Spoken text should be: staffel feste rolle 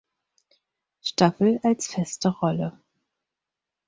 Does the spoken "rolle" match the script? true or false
true